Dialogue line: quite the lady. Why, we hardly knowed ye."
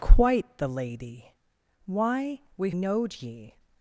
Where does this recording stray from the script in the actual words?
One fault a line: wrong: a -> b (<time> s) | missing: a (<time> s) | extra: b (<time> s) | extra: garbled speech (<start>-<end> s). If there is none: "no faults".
missing: hardly (2.7 s)